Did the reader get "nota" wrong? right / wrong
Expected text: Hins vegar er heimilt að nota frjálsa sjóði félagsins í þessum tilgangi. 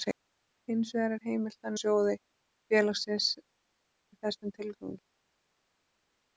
wrong